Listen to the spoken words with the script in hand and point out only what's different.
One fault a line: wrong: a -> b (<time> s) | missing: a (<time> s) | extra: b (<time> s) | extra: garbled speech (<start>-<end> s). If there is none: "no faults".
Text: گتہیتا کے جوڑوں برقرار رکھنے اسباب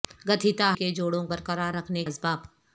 no faults